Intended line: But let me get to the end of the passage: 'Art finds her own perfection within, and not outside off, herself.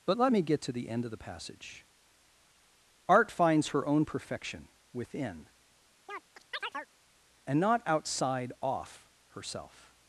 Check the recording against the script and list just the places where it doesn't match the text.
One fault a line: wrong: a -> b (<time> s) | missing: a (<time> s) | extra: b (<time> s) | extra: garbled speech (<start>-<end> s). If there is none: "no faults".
no faults